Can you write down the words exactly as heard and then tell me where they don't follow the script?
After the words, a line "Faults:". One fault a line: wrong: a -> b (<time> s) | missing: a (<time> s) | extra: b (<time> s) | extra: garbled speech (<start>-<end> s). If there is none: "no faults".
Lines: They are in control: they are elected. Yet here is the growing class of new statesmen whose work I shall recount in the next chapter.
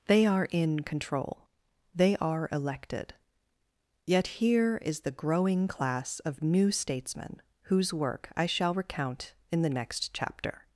They are in control: they are elected. Yet here is the growing class of new statesmen whose work I shall recount in the next chapter.
Faults:
no faults